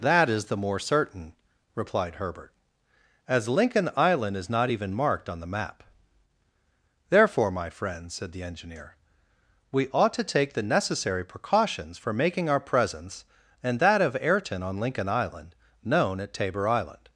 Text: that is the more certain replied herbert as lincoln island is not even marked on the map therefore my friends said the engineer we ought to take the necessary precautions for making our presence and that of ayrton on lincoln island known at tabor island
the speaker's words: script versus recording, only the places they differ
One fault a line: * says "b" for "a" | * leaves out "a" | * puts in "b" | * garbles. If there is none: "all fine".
all fine